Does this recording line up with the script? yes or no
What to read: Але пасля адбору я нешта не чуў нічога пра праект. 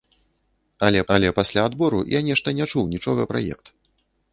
no